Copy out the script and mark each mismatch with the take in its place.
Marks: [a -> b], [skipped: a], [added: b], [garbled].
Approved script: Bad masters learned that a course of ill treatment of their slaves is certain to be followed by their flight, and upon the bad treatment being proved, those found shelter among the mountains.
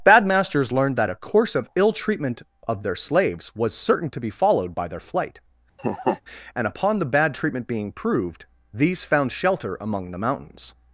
Bad masters learned that a course of ill treatment of their slaves [is -> was] certain to be followed by their flight, and upon the bad treatment being proved, [those -> these] found shelter among the mountains.